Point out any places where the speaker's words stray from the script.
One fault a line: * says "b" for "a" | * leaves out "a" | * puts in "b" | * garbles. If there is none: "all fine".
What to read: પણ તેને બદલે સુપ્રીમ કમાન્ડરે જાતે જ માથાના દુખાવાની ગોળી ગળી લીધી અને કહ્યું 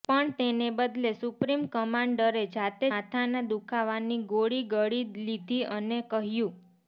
* leaves out "જ"